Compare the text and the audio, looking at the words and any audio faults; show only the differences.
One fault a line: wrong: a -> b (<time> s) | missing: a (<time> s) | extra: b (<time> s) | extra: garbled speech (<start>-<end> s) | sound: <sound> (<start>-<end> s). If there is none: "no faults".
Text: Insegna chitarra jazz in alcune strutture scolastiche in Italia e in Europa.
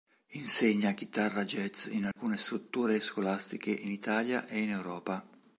sound: dropout (2.1-2.2 s)